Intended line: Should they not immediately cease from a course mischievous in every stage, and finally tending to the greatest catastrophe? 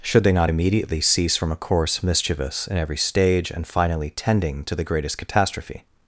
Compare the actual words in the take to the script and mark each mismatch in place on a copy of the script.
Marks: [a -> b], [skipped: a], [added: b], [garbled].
Should they not immediately cease from a course mischievous in every stage, and finally tending to the greatest catastrophe?